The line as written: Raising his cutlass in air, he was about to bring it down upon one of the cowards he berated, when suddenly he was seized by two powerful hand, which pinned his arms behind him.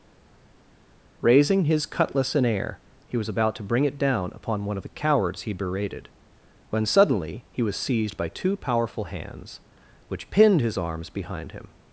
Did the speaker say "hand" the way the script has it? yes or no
no